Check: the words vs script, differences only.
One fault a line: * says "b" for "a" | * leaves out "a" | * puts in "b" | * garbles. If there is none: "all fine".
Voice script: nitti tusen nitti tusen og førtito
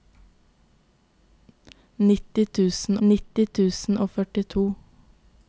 all fine